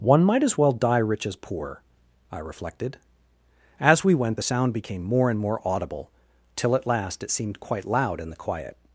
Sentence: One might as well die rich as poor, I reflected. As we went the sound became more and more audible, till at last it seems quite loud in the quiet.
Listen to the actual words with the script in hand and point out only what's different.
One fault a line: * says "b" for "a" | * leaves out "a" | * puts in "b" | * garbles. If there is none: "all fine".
* says "seemed" for "seems"